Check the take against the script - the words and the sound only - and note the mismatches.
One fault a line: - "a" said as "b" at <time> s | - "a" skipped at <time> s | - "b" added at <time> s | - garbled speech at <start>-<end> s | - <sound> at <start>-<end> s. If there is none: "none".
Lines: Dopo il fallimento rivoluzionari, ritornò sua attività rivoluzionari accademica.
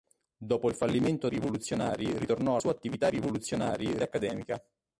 none